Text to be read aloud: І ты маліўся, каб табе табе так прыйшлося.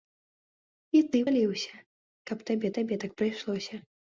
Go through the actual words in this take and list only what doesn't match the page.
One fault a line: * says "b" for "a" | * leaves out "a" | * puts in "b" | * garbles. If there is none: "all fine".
all fine